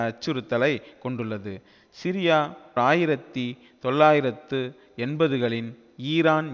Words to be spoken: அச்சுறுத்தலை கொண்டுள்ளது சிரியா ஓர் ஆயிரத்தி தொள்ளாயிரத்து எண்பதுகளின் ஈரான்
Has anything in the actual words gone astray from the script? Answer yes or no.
yes